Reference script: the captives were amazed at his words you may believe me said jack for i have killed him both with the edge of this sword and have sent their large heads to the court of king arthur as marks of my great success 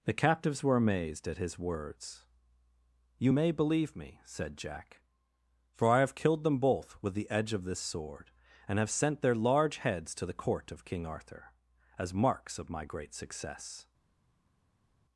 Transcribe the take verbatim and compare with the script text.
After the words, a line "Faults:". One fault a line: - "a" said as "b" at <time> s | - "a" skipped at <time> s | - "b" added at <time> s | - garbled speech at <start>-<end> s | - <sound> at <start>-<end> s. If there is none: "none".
the captives were amazed at his words you may believe me said jack for i have killed them both with the edge of this sword and have sent their large heads to the court of king arthur as marks of my great success
Faults:
- "him" said as "them" at 6.4 s